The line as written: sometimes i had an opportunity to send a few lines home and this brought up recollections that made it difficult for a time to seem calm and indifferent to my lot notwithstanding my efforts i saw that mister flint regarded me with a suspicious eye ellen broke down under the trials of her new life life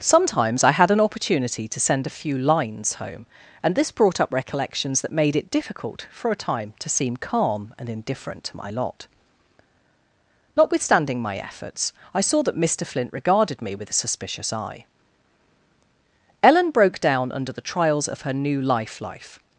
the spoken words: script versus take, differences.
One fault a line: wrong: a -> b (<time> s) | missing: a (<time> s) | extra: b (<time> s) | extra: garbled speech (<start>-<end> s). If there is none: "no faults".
no faults